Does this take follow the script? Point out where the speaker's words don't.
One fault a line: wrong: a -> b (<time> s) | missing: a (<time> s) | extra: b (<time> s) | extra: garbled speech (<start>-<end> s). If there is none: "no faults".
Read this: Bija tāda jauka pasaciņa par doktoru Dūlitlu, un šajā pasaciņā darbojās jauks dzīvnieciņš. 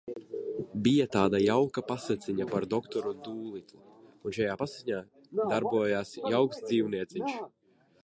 no faults